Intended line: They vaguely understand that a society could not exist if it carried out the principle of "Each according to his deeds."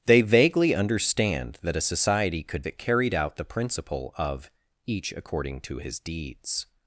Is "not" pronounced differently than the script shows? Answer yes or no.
yes